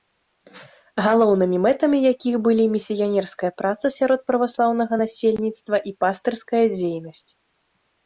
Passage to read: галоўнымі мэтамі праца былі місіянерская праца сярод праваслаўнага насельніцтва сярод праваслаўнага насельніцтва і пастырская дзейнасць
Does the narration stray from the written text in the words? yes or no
yes